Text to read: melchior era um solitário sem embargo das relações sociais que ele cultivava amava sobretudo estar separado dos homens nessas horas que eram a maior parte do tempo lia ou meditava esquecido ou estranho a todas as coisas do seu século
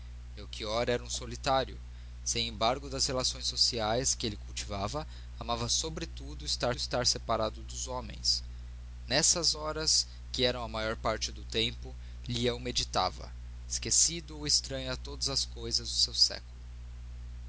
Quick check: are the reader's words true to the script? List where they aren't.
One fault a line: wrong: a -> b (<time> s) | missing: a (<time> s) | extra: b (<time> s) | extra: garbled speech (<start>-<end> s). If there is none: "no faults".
extra: estar (6.7 s)